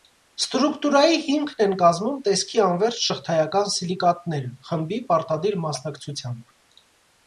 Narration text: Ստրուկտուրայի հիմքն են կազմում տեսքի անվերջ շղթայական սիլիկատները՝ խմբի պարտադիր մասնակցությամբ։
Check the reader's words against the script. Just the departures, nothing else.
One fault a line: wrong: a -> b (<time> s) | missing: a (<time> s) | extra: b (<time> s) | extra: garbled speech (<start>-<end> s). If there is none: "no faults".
no faults